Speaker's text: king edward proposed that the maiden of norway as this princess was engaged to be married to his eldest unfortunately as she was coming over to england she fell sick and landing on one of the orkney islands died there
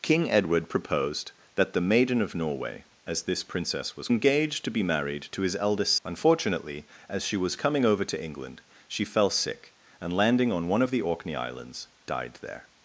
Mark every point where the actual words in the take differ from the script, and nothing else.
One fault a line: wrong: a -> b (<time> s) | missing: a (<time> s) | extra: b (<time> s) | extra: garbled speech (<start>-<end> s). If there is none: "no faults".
no faults